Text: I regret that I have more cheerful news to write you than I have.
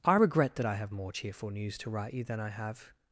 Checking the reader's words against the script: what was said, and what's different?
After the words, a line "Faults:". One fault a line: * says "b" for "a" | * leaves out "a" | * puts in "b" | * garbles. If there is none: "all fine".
I regret that I have more cheerful news to write you than I have.
Faults:
all fine